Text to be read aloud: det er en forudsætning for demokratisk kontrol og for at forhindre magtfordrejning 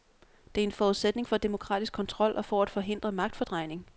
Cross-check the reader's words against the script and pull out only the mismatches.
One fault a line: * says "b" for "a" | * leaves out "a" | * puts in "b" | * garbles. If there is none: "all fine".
all fine